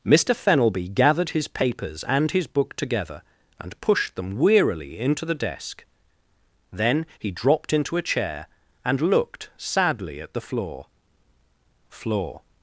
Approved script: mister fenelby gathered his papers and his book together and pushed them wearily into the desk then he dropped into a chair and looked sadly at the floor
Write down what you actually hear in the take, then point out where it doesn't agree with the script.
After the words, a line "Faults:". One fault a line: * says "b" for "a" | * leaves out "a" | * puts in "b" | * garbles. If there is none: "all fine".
mister fenelby gathered his papers and his book together and pushed them wearily into the desk then he dropped into a chair and looked sadly at the floor floor
Faults:
* puts in "floor"